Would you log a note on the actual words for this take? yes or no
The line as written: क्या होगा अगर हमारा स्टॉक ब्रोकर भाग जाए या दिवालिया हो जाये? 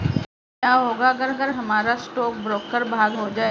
yes